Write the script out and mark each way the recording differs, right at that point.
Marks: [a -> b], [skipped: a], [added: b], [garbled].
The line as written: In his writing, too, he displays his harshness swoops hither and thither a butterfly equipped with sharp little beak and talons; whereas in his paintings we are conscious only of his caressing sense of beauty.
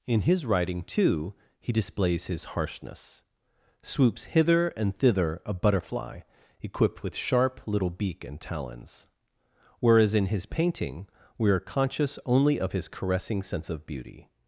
In his writing, too, he displays his harshness swoops hither and thither a butterfly equipped with sharp little beak and talons; whereas in his [paintings -> painting] we are conscious only of his caressing sense of beauty.